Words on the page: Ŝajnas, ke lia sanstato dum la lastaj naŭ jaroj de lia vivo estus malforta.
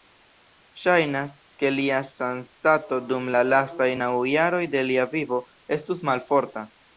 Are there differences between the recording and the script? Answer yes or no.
no